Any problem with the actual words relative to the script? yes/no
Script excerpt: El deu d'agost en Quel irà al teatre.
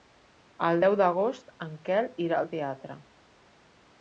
no